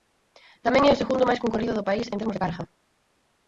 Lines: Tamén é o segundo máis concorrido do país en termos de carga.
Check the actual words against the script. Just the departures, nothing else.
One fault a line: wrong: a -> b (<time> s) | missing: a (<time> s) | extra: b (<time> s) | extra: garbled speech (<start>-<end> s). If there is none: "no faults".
no faults